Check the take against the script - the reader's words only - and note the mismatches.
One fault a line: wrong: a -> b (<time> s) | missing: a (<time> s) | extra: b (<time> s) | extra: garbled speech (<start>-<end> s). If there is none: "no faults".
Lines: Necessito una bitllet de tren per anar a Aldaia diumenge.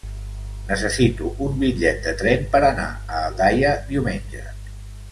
wrong: una -> un (1.5 s)